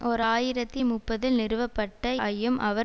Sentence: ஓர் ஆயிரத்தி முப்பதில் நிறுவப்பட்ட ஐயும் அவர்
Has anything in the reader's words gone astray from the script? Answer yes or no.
no